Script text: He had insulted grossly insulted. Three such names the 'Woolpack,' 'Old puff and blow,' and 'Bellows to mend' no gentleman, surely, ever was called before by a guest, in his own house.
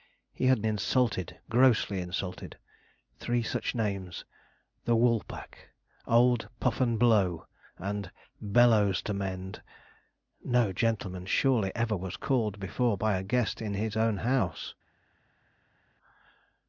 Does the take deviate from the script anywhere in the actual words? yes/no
no